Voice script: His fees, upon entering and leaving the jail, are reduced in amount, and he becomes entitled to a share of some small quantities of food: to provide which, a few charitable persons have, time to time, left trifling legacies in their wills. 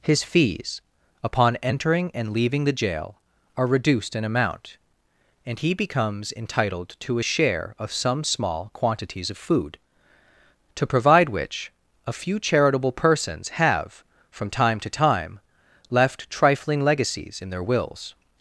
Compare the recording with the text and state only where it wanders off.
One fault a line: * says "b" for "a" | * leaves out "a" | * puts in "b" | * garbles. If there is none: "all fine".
* puts in "from"